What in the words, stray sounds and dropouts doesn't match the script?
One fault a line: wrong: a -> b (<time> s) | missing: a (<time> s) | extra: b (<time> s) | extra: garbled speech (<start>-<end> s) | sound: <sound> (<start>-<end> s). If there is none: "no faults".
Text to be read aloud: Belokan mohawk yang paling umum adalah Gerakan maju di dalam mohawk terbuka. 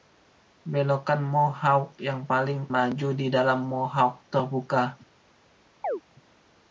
missing: umum adalah Gerakan (2.7 s)
sound: chirp (5.8-6.0 s)